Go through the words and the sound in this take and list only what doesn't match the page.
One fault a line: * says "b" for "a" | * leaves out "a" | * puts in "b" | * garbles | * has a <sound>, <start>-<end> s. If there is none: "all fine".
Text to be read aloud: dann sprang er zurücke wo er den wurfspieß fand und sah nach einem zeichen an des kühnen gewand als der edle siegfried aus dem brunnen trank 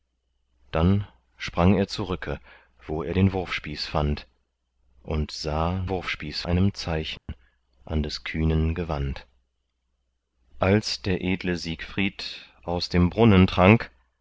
* says "wurfspieß" for "nach"
* has a dropout, 7.2-7.3 s